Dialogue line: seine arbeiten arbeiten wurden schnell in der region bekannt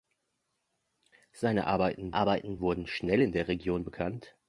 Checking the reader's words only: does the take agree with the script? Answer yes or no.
yes